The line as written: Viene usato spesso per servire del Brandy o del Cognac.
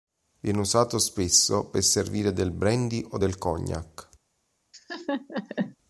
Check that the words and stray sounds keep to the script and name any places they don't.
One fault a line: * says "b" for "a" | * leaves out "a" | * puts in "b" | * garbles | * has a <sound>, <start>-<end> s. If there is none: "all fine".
* has a laugh, 4.7-5.8 s